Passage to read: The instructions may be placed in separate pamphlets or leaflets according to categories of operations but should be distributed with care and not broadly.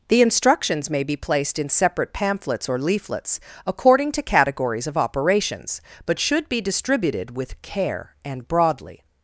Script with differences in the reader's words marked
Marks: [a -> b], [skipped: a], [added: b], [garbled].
The instructions may be placed in separate pamphlets or leaflets according to categories of operations but should be distributed with care and [skipped: not] broadly.